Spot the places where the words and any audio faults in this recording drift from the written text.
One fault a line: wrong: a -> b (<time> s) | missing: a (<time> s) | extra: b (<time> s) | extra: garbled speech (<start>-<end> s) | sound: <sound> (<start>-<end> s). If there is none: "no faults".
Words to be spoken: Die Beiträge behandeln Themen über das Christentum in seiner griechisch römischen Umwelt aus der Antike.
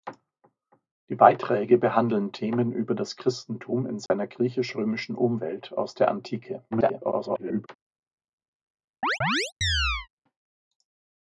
sound: dropout (4.1-4.1 s)
extra: garbled speech (6.7-7.7 s)
sound: chirp (9.0-10.1 s)